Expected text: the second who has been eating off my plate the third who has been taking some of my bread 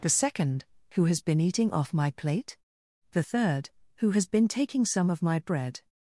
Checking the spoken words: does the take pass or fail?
pass